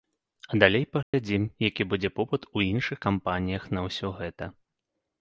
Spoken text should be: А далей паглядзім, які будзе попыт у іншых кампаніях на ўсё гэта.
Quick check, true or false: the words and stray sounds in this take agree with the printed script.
false